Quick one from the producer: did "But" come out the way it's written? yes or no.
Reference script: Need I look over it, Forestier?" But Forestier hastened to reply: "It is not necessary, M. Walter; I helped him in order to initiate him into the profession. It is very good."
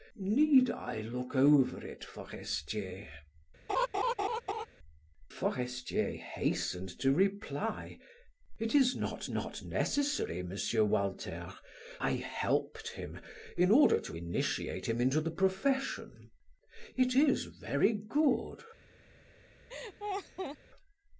no